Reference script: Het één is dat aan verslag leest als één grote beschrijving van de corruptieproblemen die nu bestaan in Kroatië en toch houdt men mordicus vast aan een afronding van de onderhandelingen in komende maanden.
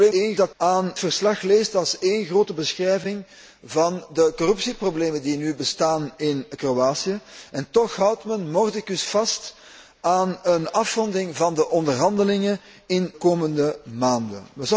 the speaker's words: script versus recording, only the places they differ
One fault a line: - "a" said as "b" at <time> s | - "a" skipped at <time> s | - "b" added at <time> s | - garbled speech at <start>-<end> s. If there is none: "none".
none